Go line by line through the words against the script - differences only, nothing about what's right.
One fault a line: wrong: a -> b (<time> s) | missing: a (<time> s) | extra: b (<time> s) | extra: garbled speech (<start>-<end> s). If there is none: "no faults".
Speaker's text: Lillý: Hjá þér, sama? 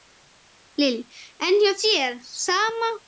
extra: En (1.5 s)